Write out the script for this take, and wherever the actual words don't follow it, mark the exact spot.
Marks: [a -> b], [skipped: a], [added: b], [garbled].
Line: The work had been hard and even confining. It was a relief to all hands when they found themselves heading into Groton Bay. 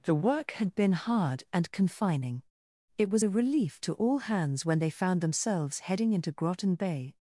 The work had been hard and [skipped: even] confining. It was a relief to all hands when they found themselves heading into Groton Bay.